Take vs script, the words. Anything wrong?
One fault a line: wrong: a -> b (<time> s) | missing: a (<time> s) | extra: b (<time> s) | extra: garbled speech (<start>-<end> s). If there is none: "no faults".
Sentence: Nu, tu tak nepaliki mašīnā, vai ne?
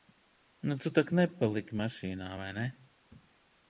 no faults